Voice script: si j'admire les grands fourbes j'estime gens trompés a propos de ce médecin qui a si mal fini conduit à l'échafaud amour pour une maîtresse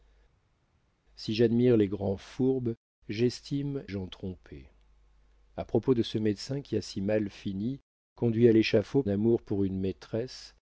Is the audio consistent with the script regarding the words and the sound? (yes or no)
yes